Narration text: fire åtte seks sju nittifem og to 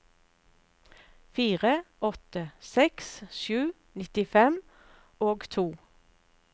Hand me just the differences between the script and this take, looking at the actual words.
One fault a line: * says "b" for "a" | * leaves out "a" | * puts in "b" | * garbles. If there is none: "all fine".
all fine